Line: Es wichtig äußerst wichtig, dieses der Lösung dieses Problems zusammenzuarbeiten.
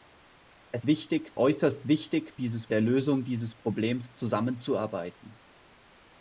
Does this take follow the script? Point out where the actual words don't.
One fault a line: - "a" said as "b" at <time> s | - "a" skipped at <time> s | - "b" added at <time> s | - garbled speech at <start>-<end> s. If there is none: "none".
none